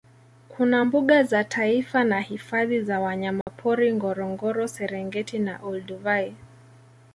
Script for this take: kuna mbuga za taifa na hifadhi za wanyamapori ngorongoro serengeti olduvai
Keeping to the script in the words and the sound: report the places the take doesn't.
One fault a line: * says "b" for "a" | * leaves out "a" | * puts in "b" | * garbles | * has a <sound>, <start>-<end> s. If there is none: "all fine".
* has a dropout, 3.4-3.5 s
* puts in "na"